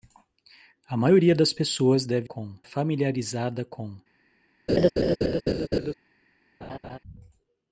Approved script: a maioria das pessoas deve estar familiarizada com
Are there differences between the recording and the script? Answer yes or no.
yes